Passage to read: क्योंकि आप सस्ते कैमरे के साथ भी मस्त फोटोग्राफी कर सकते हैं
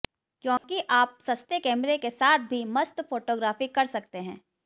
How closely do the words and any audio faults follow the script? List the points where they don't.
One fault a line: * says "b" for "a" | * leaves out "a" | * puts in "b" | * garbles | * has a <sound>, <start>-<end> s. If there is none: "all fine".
* has a dropout, 0.6-0.6 s